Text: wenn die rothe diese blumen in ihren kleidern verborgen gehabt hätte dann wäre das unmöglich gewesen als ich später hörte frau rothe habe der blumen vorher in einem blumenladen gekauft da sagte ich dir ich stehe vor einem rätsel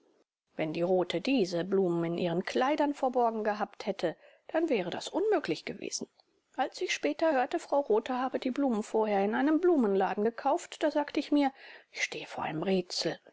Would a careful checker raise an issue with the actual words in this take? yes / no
yes